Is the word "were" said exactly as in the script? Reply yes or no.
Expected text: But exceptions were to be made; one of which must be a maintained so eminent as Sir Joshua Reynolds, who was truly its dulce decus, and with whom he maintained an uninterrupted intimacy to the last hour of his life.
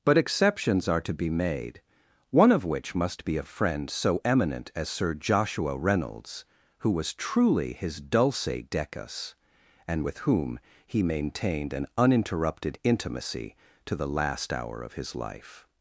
no